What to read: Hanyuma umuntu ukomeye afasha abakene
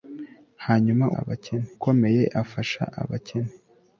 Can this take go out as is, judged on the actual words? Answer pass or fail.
fail